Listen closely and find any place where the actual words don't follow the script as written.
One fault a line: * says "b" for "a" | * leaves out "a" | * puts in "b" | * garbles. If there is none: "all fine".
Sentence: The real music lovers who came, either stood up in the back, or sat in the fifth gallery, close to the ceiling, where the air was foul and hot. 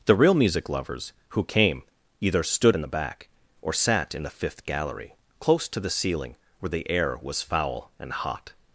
* leaves out "up"